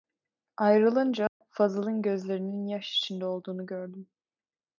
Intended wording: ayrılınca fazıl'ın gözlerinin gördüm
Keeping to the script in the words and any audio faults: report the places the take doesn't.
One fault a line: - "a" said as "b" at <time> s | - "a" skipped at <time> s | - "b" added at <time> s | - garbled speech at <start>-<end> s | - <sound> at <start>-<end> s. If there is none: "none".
- dropout at 1.3-1.4 s
- "yaş içinde olduğunu" added at 2.7 s